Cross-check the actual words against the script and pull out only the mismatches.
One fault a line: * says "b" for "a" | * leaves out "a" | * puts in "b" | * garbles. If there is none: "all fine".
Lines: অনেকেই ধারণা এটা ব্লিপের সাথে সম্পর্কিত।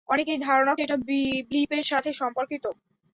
all fine